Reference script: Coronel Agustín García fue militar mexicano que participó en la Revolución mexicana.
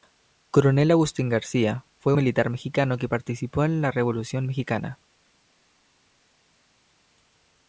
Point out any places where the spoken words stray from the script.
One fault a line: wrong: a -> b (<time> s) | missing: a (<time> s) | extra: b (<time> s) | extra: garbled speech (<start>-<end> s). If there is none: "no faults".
no faults